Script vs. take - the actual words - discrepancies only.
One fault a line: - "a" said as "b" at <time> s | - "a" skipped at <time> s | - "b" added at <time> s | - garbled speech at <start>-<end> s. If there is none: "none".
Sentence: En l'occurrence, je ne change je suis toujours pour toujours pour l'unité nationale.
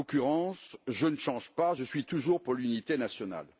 - "pas" added at 1.5 s
- "toujours pour" skipped at 2.5 s